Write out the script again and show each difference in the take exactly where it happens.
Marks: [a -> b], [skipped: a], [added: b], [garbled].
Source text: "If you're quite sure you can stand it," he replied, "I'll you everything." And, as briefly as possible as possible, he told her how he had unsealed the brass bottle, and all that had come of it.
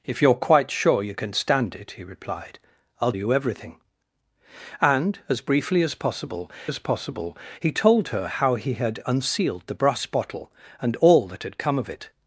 "If you're quite sure you can stand it," he replied, "I'll you everything." And, as briefly as possible as possible, he told her how he had unsealed the brass bottle, and all that had come of it.